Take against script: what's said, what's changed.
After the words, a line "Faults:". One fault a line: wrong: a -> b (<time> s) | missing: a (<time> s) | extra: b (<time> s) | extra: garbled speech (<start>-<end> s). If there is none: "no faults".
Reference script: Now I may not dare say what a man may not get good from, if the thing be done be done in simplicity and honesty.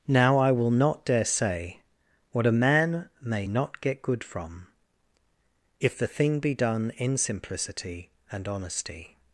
Now I will not dare say what a man may not get good from, if the thing be done in simplicity and honesty.
Faults:
wrong: may -> will (0.5 s)
missing: be done (6.9 s)